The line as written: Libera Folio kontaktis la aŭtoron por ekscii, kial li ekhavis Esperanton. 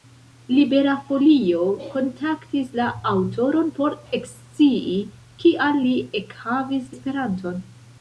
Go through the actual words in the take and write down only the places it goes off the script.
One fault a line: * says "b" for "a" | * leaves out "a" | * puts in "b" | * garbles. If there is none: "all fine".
all fine